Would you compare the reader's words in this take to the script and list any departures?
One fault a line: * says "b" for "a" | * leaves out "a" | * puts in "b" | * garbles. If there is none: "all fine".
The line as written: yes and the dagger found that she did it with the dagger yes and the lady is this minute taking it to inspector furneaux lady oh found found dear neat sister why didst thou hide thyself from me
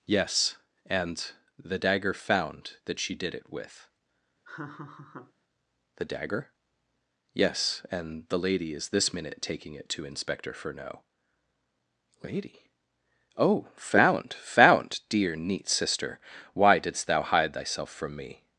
all fine